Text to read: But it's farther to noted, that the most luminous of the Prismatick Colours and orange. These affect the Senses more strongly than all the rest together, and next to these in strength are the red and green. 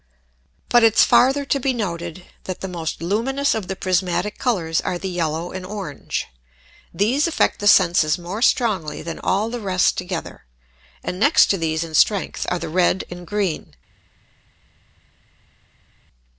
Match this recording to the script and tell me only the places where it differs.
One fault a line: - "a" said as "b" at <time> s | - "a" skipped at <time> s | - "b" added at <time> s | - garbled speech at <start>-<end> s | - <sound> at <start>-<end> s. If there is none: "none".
- "be" added at 1.6 s
- "are the yellow" added at 4.8 s